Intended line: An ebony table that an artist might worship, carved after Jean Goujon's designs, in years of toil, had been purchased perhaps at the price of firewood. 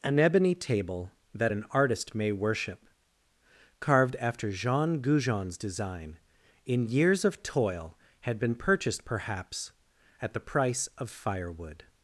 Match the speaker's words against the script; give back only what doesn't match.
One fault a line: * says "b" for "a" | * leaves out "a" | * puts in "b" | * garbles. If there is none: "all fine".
* says "may" for "might"
* says "design" for "designs"